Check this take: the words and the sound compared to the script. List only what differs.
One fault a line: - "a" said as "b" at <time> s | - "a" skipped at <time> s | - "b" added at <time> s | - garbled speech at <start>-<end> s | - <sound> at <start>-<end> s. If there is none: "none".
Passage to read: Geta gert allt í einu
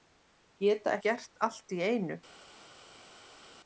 none